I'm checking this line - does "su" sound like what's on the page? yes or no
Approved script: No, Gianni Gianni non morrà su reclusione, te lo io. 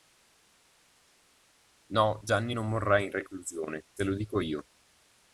no